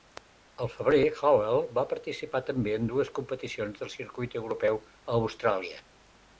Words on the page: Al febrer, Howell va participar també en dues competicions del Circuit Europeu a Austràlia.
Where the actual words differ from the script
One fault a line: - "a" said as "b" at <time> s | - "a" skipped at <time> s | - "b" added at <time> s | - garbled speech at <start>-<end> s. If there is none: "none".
none